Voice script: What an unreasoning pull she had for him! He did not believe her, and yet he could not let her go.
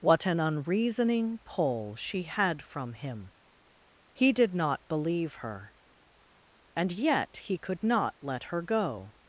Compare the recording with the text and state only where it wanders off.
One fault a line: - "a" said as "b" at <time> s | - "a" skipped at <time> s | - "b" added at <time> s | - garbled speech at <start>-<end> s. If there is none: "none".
- "for" said as "from" at 2.6 s